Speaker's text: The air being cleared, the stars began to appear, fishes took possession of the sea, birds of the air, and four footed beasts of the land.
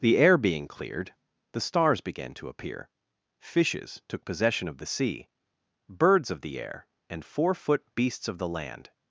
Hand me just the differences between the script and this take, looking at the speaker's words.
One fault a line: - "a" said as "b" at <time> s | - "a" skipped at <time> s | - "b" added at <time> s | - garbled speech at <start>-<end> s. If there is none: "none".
- "footed" said as "foot" at 7.5 s